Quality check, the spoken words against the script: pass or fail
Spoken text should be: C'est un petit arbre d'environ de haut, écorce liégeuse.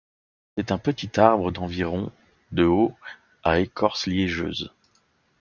fail